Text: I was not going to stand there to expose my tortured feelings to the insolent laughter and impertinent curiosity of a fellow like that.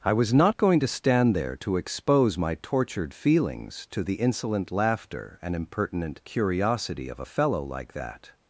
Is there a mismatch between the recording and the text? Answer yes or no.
no